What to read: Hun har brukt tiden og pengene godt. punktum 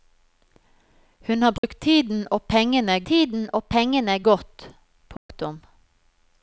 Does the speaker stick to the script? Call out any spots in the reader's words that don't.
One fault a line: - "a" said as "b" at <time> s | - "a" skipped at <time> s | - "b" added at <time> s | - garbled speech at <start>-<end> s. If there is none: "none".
- "tiden og pengene" added at 3.1 s